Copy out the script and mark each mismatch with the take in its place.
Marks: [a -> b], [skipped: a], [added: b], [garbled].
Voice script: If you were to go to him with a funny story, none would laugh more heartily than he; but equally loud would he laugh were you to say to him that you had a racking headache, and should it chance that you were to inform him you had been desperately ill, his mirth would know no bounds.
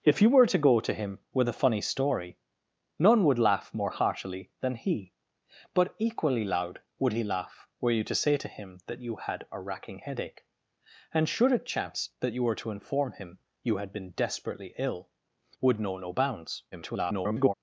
If you were to go to him with a funny story, none would laugh more heartily than he; but equally loud would he laugh were you to say to him that you had a racking headache, and should it chance that you were to inform him you had been desperately ill, [skipped: his mirth] would know no bounds. [garbled]